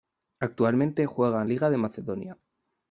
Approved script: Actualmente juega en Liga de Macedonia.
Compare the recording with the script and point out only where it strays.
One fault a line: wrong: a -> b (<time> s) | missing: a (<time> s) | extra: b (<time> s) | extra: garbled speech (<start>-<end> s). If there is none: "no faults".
no faults